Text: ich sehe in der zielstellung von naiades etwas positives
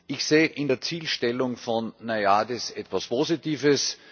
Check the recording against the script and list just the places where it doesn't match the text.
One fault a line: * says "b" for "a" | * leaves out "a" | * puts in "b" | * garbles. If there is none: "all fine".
all fine